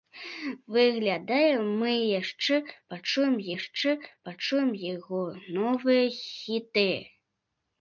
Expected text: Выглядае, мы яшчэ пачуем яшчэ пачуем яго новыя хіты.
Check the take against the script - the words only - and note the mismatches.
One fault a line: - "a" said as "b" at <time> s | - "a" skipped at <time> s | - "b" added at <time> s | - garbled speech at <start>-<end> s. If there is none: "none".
none